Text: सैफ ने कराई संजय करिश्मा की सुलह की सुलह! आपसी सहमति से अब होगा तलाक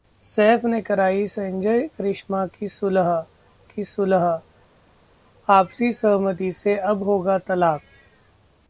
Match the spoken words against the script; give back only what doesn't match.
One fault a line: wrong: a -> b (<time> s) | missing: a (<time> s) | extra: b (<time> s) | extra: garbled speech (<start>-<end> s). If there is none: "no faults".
no faults